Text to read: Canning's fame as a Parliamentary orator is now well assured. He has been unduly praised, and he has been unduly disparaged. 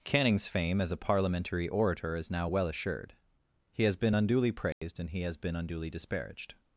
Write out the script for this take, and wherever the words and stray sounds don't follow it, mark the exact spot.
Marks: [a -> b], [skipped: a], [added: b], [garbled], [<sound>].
Canning's fame as a Parliamentary orator is now well assured. He has been unduly praised, [dropout] and he has been unduly disparaged.